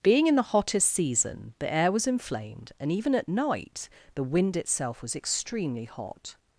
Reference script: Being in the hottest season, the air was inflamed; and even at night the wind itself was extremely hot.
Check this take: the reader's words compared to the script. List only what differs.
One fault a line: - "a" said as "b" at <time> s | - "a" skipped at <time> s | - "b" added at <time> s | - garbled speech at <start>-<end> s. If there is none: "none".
none